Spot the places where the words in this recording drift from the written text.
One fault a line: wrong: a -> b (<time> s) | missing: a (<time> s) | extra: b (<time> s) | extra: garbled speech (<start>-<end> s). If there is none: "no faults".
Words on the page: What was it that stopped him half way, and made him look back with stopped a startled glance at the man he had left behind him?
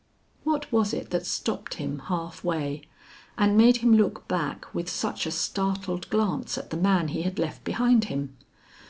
wrong: stopped -> such (4.9 s)